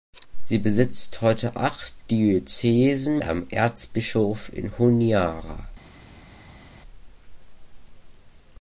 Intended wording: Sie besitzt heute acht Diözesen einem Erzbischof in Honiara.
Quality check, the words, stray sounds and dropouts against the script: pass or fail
pass